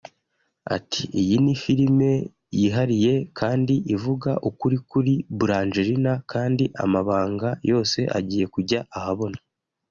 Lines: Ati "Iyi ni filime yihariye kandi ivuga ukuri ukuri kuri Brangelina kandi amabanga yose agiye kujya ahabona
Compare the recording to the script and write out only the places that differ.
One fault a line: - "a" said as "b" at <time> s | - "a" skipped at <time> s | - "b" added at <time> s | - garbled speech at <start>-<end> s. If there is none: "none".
- "ukuri" skipped at 4.8 s